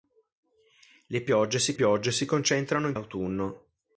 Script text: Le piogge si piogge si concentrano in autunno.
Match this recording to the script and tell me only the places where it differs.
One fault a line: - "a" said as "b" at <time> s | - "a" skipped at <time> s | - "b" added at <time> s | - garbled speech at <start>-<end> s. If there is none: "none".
none